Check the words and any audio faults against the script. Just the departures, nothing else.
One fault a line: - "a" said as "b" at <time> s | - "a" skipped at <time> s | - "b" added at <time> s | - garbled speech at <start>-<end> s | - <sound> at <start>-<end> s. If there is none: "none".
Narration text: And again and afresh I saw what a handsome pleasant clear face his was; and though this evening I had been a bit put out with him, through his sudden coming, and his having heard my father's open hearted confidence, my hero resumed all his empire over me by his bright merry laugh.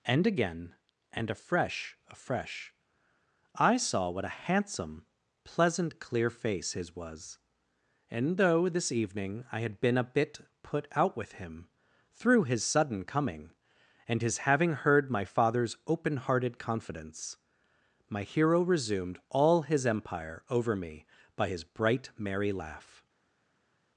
- "afresh" added at 2.1 s